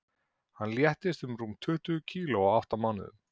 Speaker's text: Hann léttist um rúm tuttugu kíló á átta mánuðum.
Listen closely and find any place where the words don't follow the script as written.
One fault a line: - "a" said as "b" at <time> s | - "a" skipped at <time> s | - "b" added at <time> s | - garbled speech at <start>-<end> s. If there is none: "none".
none